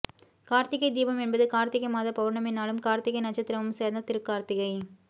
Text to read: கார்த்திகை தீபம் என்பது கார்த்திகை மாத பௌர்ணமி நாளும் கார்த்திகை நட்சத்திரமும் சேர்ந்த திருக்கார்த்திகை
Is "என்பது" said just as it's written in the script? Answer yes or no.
yes